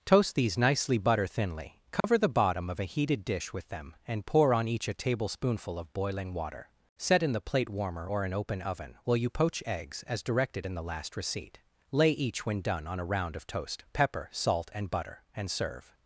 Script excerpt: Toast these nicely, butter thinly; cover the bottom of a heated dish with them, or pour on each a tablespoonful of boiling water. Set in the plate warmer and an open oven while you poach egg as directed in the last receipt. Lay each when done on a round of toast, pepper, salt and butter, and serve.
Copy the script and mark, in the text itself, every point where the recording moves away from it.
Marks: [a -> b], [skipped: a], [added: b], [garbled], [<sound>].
Toast these nicely, butter thinly; cover [dropout] the bottom of a heated dish with them, [or -> and] pour on each a tablespoonful of boiling water. Set in the plate warmer [and -> or] an open oven while you poach [egg -> eggs] as directed in the last receipt. Lay each when done on a round of toast, pepper, salt and butter, and serve.